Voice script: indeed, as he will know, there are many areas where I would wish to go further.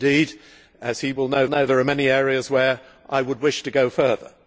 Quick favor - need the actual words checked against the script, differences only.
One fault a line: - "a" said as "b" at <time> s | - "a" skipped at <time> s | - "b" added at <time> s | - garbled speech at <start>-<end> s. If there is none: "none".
- "know" added at 1.5 s